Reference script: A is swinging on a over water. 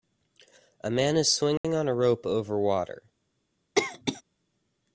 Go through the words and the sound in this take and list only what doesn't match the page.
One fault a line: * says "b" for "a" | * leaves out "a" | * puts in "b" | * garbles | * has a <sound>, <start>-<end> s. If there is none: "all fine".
* puts in "man"
* has a dropout, 1.6-1.6 s
* puts in "rope"
* has a cough, 3.8-4.2 s